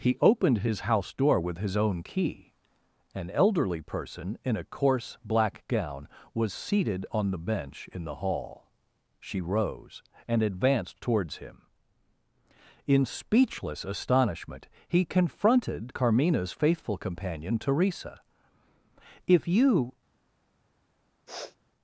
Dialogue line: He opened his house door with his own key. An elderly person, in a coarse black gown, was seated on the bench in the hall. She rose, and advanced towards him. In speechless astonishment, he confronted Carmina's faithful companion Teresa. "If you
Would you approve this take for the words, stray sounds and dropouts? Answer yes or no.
no